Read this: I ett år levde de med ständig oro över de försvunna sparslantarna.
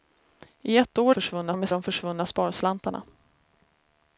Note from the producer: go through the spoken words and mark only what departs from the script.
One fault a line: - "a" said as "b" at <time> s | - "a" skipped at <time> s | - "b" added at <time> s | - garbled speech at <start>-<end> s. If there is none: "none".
- "levde" said as "försvunna" at 1.1 s
- "ständig oro över" skipped at 1.7 s